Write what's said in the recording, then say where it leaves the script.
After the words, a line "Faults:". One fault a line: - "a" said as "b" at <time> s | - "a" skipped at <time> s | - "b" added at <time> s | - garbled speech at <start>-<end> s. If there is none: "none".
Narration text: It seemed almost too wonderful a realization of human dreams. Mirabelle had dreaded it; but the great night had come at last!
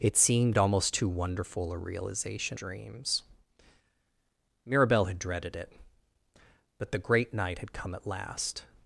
It seemed almost too wonderful a realization dreams. Mirabelle had dreaded it; but the great night had come at last!
Faults:
- "of human" skipped at 2.6 s